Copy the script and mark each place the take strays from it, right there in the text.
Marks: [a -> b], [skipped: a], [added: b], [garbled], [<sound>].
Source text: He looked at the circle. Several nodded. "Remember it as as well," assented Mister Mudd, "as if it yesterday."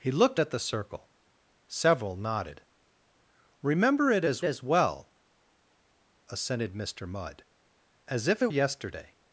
He looked at the circle. Several nodded. "Remember it as as well," assented Mister Mudd, "as if it yesterday."